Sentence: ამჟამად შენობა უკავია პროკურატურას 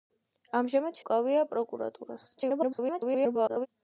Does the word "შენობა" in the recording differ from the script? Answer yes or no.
yes